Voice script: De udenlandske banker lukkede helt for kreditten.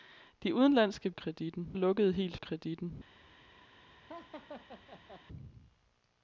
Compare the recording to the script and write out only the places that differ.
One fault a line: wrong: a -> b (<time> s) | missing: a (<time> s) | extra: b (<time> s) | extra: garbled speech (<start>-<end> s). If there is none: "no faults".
wrong: banker -> kreditten (1.1 s)
missing: for (2.4 s)